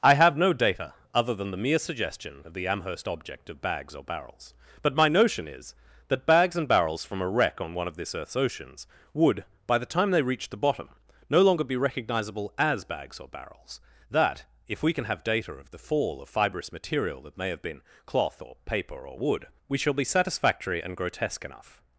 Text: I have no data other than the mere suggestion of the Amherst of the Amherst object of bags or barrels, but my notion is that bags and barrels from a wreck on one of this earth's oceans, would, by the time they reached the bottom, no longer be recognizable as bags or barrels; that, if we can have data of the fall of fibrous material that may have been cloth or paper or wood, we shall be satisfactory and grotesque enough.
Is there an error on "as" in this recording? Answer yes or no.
no